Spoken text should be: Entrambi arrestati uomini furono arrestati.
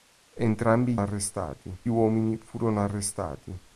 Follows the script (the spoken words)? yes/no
yes